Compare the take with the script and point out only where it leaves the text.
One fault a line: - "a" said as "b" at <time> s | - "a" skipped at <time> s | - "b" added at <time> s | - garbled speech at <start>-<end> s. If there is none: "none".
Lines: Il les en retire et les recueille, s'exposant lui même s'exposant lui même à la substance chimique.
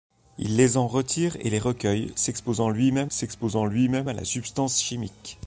none